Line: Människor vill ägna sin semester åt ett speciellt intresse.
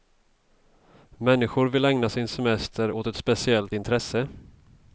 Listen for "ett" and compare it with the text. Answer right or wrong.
right